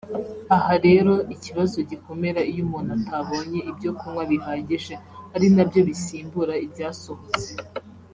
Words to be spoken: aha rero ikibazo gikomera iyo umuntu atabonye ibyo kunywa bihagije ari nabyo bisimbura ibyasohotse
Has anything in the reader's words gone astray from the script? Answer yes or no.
no